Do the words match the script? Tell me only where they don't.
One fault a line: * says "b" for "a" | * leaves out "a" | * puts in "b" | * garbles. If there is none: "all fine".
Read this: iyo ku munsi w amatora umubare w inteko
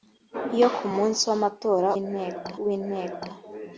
* says "inteko" for "umubare"